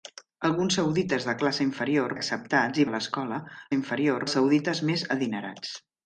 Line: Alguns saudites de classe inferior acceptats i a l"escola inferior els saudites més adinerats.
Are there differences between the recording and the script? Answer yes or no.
no